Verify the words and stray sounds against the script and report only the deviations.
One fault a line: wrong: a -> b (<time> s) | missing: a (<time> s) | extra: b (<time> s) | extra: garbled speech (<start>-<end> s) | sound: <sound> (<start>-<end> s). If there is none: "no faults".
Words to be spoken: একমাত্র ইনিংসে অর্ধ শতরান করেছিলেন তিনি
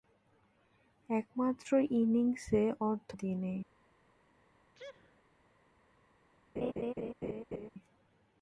missing: শতরান করেছিলেন (3.1 s)
sound: sneeze (4.8-5.2 s)
sound: laugh (6.6-7.7 s)